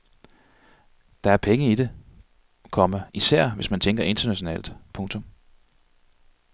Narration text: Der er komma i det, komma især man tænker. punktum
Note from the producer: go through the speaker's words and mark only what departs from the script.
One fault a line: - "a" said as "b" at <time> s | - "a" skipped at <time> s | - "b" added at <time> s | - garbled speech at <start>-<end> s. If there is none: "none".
- "komma" said as "penge" at 1.4 s
- "hvis" added at 3.5 s
- "internationalt" added at 4.0 s